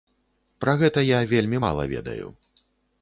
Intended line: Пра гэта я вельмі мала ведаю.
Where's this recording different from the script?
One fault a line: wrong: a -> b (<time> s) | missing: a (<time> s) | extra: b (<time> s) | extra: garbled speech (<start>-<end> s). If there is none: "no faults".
no faults